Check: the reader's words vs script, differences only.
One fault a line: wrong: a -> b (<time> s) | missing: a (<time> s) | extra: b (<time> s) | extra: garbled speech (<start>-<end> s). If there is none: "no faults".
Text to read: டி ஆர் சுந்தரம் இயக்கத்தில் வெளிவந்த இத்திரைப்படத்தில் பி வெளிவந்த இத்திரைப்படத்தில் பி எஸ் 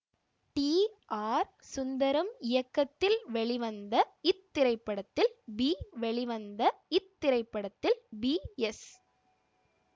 no faults